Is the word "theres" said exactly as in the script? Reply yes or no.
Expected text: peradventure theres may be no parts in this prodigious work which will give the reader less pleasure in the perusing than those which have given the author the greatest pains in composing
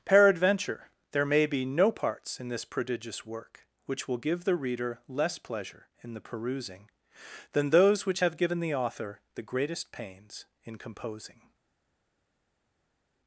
no